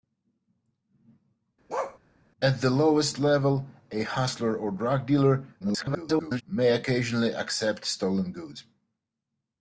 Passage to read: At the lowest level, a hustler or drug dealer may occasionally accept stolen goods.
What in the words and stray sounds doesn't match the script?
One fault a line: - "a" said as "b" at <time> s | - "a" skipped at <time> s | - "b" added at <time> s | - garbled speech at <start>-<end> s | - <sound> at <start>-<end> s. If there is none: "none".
- bark at 1.7-2.0 s
- garbled speech at 5.6-6.4 s